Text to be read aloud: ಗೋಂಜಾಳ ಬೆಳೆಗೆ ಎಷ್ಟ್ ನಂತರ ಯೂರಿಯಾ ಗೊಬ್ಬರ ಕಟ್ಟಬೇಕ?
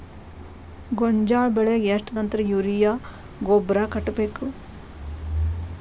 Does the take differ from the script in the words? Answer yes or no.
no